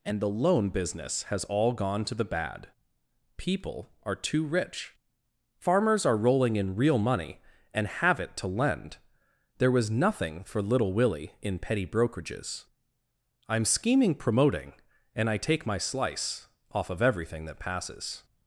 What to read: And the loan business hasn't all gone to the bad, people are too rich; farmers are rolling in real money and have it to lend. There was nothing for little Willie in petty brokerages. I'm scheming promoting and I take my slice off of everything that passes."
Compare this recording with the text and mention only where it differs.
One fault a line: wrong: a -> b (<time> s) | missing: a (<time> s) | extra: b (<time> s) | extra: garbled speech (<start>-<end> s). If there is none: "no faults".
wrong: hasn't -> has (1.2 s)